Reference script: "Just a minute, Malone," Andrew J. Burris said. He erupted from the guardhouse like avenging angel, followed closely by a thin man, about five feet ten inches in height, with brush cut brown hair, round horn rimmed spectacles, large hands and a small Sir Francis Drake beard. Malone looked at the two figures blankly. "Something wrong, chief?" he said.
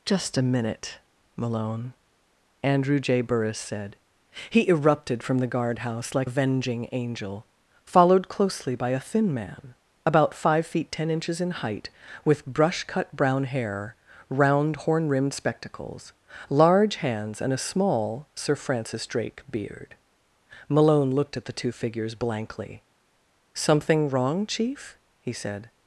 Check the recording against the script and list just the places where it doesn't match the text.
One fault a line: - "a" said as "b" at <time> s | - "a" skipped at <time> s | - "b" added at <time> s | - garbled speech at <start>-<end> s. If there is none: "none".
none